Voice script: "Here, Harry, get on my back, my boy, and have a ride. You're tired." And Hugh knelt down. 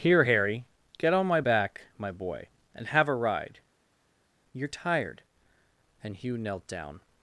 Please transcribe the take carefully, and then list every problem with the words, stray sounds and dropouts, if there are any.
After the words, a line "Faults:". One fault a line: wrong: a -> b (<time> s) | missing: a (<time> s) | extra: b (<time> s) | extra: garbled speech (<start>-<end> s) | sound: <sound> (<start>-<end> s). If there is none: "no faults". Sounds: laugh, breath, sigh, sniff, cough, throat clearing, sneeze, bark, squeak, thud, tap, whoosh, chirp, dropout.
"Here, Harry, get on my back, my boy, and have a ride. You're tired." And Hugh knelt down.
Faults:
no faults